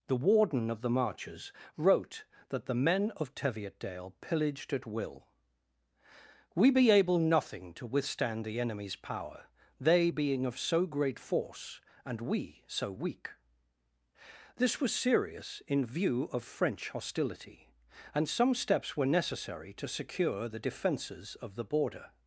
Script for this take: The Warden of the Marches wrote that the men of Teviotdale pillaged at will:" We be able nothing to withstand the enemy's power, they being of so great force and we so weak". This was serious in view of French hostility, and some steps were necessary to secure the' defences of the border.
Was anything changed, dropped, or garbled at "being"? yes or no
no